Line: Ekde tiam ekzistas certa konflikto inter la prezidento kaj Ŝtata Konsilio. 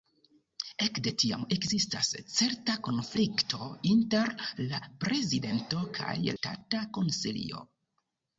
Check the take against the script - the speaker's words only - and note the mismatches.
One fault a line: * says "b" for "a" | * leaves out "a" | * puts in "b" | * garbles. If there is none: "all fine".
all fine